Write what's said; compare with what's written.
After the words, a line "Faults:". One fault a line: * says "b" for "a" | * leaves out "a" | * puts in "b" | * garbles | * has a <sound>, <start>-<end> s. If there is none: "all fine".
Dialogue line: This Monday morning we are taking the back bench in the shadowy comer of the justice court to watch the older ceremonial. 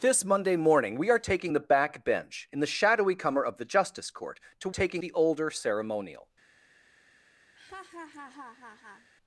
This Monday morning we are taking the back bench in the shadowy comer of the justice court to taking the older ceremonial.
Faults:
* says "taking" for "watch"
* has a laugh, 7.5-9.1 s